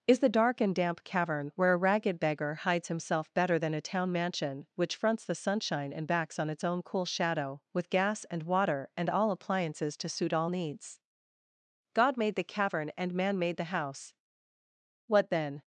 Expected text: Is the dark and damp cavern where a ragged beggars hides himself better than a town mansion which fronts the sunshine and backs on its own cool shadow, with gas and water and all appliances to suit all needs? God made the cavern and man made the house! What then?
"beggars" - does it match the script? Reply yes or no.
no